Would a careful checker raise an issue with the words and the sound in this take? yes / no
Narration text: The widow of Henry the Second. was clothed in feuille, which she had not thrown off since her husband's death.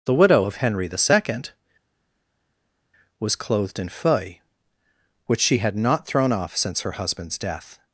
no